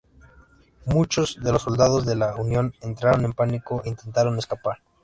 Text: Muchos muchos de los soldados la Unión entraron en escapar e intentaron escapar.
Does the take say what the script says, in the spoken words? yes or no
no